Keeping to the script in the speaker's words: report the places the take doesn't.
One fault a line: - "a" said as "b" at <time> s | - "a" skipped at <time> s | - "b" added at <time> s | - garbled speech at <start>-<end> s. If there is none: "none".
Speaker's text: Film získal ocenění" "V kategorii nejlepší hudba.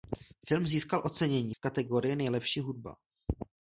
none